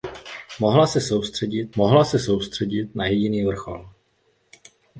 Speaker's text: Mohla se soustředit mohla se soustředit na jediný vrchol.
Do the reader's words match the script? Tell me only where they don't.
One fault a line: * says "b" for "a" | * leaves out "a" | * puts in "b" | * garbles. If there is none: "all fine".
all fine